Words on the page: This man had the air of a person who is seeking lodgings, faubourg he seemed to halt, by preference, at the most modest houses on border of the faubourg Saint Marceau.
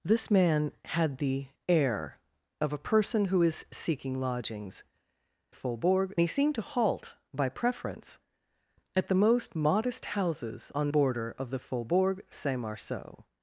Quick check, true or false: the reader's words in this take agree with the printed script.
true